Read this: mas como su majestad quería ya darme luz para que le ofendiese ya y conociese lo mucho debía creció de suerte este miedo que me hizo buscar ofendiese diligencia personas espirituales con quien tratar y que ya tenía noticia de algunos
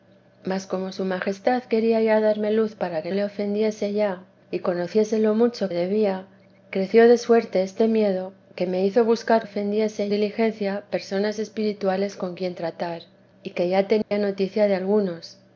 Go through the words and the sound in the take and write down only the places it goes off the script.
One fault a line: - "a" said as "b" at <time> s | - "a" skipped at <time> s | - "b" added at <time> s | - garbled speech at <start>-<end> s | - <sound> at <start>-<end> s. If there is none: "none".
- dropout at 14.0-14.1 s